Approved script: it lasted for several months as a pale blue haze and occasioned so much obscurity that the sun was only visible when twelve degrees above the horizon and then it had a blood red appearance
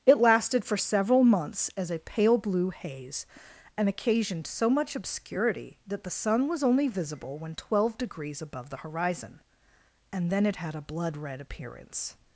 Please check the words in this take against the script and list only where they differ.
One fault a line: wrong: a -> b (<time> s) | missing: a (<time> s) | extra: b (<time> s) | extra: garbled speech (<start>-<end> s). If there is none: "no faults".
no faults